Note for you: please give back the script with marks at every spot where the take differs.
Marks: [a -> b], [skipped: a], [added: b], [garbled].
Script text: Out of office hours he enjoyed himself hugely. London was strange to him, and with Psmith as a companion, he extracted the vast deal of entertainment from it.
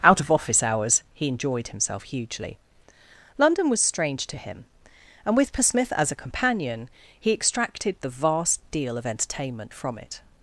Out of office hours he enjoyed himself hugely. London was strange to him, and with Psmith as a companion, he extracted the vast deal of entertainment from it.